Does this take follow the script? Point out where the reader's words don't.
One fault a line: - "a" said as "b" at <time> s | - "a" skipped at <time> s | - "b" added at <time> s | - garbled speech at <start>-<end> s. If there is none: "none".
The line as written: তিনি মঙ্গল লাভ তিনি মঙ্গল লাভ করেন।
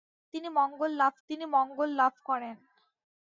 none